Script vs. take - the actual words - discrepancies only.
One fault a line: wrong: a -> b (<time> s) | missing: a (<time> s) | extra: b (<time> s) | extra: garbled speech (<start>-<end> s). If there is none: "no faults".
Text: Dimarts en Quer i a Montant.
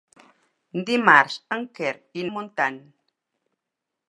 no faults